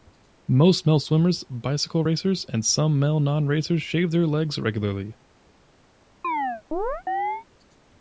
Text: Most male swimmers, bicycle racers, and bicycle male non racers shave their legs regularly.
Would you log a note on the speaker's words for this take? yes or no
yes